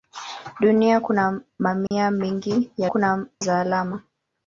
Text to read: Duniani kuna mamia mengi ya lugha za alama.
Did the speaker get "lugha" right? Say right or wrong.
wrong